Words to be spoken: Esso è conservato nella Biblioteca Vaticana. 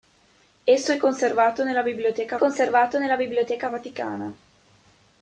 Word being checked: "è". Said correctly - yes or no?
yes